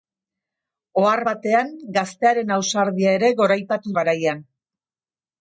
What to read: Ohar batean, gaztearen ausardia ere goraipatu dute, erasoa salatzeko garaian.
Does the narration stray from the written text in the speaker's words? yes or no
yes